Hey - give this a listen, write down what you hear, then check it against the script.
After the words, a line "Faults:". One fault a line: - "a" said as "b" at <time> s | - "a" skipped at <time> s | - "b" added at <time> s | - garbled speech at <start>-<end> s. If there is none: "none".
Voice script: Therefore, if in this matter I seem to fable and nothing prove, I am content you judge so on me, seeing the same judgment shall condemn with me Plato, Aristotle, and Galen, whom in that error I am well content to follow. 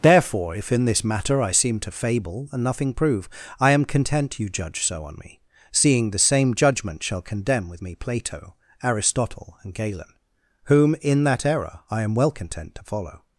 Therefore, if in this matter I seem to fable and nothing prove, I am content you judge so on me, seeing the same judgment shall condemn with me Plato, Aristotle, and Galen, whom in that error I am well content to follow.
Faults:
none